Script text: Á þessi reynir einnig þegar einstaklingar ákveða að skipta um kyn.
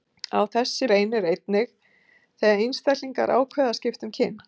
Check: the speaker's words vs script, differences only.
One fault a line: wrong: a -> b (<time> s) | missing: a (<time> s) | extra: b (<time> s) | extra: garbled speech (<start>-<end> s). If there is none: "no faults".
no faults